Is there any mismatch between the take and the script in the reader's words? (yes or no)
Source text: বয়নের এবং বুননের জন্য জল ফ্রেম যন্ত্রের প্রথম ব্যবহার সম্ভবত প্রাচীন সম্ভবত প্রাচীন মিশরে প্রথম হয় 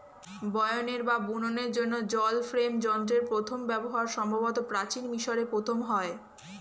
yes